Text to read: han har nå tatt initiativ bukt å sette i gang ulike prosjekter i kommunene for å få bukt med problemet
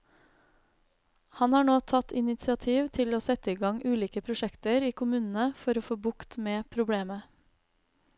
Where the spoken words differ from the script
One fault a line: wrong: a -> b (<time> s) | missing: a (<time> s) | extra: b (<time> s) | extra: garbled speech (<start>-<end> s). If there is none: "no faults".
wrong: bukt -> til (3.0 s)